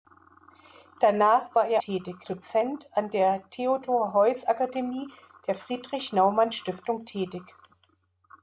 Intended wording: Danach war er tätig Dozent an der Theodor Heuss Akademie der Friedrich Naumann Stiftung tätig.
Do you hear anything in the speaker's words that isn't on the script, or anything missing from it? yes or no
no